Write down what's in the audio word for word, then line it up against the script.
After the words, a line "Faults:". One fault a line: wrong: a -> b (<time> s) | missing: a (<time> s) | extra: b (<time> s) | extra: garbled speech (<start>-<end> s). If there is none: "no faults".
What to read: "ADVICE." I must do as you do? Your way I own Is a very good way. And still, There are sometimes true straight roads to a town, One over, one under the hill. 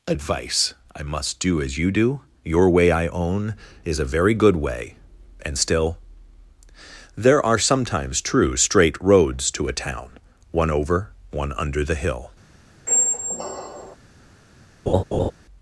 "ADVICE." I must do as you do? Your way I own Is a very good way. And still, There are sometimes true straight roads to a town, One over, one under the hill.
Faults:
no faults